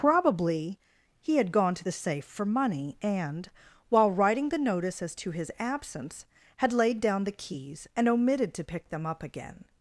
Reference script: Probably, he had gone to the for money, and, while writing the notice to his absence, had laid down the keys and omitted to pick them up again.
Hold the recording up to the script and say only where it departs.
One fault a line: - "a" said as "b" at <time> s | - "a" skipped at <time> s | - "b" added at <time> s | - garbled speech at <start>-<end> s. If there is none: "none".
- "safe" added at 1.9 s
- "as" added at 5.0 s